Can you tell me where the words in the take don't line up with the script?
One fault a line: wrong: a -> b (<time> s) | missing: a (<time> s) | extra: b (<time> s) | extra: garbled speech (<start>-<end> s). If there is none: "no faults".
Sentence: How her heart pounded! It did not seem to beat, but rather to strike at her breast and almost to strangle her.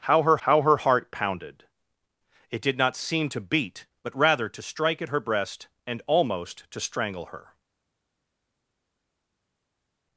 extra: how her (0.4 s)